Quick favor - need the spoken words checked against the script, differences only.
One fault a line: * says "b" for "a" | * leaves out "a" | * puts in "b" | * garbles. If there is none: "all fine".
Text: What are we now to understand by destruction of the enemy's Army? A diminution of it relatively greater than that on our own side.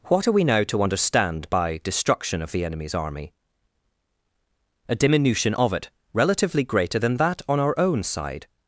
all fine